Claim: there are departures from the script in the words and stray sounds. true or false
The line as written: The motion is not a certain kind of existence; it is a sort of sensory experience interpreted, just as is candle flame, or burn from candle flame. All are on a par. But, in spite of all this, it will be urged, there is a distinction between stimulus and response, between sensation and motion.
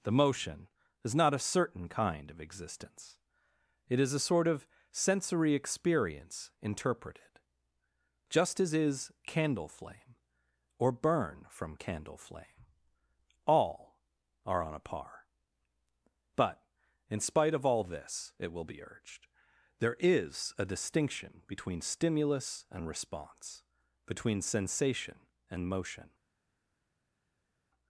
false